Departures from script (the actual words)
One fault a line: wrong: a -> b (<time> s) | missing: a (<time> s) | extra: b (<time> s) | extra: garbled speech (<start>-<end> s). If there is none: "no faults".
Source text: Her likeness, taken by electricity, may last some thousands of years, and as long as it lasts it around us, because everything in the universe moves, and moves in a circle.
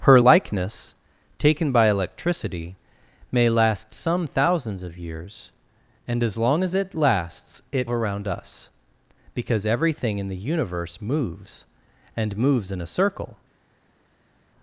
no faults